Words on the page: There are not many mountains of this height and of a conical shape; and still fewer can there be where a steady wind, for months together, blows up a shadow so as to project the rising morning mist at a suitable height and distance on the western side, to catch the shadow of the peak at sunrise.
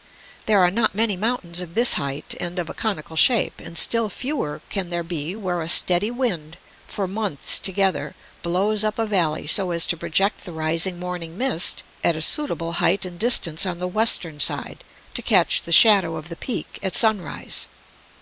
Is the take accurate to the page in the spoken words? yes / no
no